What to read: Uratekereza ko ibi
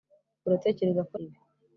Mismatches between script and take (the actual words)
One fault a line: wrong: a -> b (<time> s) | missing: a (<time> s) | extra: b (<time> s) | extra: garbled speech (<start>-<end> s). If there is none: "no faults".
no faults